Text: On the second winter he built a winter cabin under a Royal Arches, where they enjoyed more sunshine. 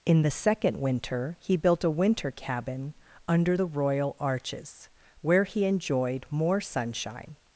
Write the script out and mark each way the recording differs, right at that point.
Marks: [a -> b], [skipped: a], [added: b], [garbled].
[On -> In] the second winter he built a winter cabin under [a -> the] Royal Arches, where [they -> he] enjoyed more sunshine.